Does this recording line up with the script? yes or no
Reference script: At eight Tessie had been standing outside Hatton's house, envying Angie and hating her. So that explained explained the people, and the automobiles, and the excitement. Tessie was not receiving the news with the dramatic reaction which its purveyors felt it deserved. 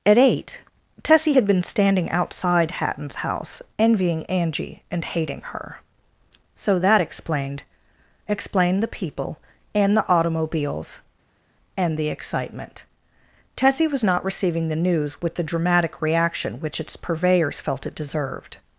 yes